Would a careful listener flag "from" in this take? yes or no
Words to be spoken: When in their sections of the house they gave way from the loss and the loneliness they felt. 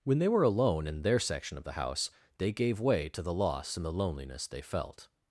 yes